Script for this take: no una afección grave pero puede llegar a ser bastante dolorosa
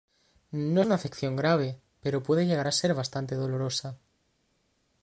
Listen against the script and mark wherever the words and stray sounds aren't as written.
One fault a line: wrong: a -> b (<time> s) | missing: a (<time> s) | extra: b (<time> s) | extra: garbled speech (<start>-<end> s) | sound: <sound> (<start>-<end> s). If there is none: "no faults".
no faults